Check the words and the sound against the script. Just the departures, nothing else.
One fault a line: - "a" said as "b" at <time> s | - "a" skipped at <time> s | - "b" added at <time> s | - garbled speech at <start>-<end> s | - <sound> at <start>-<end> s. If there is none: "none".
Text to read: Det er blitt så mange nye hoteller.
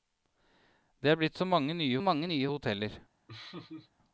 - "mange nye" added at 2.0 s
- laugh at 3.3-3.9 s